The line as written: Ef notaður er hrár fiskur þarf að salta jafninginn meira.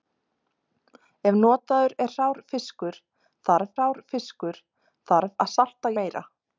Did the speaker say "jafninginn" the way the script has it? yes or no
no